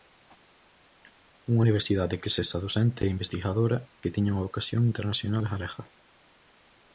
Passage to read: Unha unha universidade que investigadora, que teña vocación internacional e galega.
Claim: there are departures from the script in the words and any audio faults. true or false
true